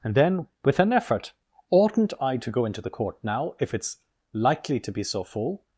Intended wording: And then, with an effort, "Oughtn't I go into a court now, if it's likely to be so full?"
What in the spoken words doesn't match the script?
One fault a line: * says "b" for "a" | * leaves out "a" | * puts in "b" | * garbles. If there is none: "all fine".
* puts in "to"
* says "the" for "a"